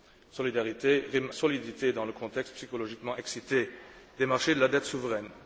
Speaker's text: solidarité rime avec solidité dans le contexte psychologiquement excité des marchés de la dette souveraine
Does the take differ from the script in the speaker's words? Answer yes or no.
yes